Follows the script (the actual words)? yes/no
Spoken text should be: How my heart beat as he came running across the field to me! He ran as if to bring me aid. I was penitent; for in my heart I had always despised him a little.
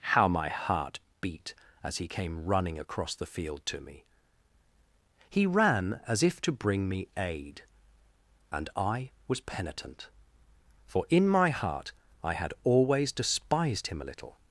no